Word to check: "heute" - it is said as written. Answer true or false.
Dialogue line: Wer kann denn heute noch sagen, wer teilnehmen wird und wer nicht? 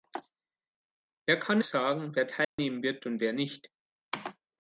false